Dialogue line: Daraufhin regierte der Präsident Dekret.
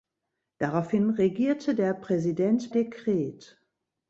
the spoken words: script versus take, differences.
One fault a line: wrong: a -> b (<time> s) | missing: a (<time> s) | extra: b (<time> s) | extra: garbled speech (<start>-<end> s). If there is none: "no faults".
no faults